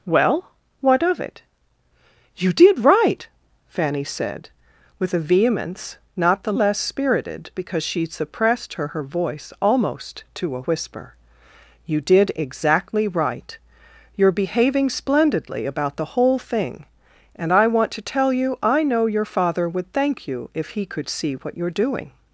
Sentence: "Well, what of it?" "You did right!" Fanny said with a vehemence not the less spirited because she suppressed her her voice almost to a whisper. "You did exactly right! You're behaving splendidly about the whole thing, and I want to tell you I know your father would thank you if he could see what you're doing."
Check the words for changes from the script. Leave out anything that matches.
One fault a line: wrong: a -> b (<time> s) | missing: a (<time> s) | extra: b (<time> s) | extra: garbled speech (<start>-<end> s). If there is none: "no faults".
no faults